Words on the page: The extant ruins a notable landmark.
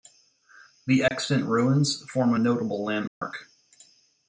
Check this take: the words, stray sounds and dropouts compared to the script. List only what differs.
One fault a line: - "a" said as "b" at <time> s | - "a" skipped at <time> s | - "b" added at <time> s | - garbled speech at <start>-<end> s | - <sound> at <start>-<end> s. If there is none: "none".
- dropout at 1.1-1.1 s
- "form" added at 2.1 s
- dropout at 3.1-3.2 s